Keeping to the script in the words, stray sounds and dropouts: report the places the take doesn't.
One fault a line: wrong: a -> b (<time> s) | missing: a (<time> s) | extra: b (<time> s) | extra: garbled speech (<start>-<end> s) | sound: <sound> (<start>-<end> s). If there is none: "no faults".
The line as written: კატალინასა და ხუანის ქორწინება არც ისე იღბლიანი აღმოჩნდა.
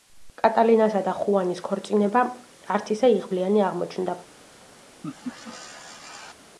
sound: laugh (5.0-6.3 s)